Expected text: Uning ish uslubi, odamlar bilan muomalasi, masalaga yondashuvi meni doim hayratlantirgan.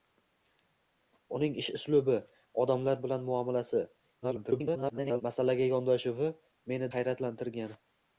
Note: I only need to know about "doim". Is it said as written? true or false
false